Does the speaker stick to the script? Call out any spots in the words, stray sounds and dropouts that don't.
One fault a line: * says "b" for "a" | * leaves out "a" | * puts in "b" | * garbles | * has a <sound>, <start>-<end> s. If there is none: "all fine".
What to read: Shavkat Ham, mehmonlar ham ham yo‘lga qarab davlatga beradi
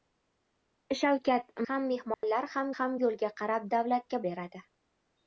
* has a dropout, 2.1-2.2 s